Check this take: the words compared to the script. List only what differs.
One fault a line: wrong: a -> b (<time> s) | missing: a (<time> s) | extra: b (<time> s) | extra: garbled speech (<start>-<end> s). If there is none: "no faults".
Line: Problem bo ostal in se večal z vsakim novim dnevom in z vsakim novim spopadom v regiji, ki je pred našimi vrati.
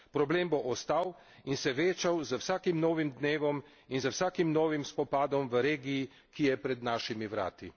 no faults